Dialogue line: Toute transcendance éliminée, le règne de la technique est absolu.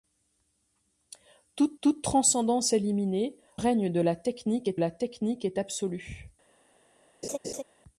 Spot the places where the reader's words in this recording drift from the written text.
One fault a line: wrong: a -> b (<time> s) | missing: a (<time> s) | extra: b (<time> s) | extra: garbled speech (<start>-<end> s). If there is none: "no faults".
extra: toute (1.8 s)
missing: le (3.4 s)
extra: la technique est (4.8 s)